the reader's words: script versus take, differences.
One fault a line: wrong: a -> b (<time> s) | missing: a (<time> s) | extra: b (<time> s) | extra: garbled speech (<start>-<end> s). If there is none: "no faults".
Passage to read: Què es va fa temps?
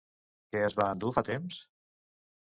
extra: endur (0.9 s)